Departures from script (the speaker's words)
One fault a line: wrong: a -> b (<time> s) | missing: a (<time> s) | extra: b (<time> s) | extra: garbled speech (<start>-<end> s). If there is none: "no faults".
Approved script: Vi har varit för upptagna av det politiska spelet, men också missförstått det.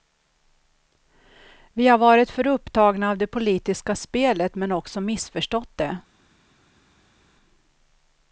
no faults